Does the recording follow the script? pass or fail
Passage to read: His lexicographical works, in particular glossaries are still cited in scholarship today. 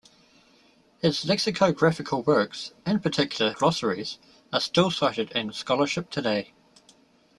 pass